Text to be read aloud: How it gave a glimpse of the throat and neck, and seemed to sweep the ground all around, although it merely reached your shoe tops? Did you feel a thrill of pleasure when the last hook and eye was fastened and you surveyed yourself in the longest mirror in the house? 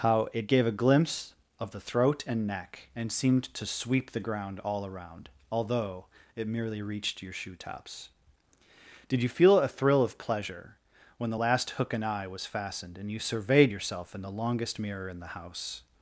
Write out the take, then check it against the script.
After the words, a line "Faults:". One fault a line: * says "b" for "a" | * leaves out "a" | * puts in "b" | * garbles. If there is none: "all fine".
How it gave a glimpse of the throat and neck, and seemed to sweep the ground all around, although it merely reached your shoe tops? Did you feel a thrill of pleasure when the last hook and eye was fastened and you surveyed yourself in the longest mirror in the house?
Faults:
all fine